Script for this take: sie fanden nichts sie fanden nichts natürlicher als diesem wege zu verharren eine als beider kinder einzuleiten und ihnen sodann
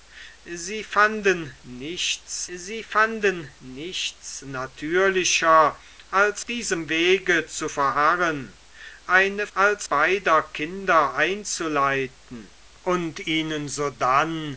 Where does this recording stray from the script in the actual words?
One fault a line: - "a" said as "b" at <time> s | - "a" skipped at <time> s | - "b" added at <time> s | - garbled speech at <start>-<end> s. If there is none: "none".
none